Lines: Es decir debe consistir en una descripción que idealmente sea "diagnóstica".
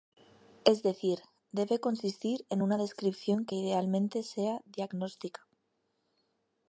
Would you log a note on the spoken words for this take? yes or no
no